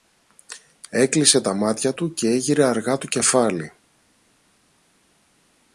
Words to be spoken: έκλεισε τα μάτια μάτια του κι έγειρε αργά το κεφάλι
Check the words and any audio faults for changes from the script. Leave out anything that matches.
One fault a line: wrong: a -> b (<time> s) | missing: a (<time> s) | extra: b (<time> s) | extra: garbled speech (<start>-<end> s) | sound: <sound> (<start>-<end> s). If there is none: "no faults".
missing: μάτια (1.9 s)